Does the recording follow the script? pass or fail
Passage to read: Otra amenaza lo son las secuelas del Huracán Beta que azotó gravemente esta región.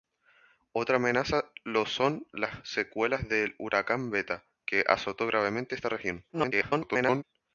fail